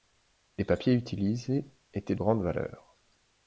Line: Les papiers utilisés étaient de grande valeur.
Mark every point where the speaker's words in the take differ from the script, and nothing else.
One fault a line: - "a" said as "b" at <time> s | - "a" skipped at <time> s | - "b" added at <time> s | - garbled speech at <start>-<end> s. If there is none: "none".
- "de" skipped at 2.1 s